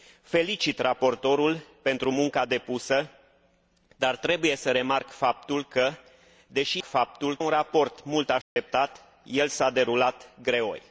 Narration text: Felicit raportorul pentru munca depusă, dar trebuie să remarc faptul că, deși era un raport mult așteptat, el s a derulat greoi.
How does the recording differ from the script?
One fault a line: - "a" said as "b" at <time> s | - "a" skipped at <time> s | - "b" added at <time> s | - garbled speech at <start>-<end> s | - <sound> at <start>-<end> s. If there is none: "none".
- "era" said as "faptul" at 6.8 s
- dropout at 8.4-8.6 s